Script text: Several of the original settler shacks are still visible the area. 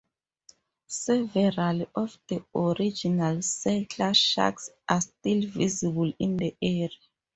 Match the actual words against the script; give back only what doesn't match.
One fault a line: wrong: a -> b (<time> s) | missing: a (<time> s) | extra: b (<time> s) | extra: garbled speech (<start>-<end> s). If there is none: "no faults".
extra: in (6.2 s)